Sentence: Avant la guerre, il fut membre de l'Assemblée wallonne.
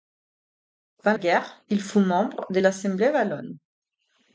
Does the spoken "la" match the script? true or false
false